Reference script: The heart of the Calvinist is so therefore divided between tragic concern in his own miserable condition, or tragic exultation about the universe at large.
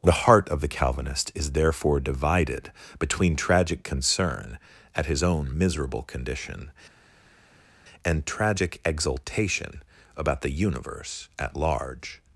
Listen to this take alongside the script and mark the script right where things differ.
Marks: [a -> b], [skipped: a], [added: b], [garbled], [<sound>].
The heart of the Calvinist is [skipped: so] therefore divided between tragic concern [in -> at] his own miserable condition, [or -> and] tragic exultation about the universe at large.